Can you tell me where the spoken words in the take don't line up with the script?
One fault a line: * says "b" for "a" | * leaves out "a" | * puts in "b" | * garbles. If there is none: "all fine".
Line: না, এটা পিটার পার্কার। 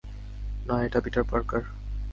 all fine